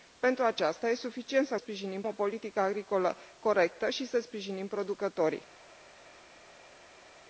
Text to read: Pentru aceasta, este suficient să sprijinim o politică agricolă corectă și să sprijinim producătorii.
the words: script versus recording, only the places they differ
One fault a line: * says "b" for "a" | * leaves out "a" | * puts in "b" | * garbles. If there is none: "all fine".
all fine